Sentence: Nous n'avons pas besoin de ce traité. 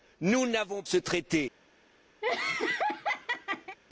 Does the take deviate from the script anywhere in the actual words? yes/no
yes